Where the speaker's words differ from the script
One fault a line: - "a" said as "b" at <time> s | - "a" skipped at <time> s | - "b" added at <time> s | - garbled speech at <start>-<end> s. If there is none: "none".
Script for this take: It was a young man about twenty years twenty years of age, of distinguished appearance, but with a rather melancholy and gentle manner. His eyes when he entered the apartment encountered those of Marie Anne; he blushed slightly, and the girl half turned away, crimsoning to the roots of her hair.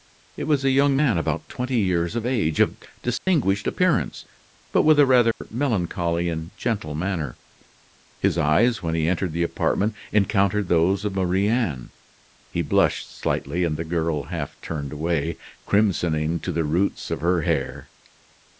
- "twenty years" skipped at 2.1 s